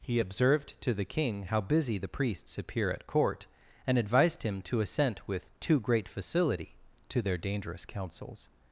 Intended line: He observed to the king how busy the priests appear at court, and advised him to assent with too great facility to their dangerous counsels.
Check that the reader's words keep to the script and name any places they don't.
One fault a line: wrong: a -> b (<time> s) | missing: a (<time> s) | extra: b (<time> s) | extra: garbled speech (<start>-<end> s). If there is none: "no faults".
no faults